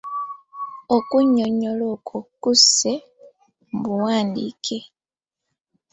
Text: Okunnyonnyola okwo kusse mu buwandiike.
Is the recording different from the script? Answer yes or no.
no